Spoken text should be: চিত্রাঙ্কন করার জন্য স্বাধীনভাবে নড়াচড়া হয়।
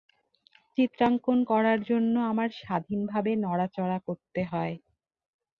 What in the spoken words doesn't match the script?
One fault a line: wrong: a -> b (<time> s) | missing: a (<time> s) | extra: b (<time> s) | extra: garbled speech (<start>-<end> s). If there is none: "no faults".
extra: আমার (2.3 s)
extra: করতে (4.1 s)